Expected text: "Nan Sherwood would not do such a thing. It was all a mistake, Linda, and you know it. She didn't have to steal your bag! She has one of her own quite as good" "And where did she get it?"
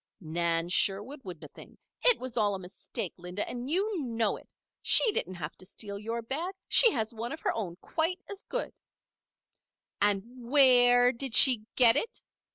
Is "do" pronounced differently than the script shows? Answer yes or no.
yes